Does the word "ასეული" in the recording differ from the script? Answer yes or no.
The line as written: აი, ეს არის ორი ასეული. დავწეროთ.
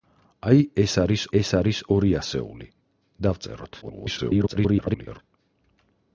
no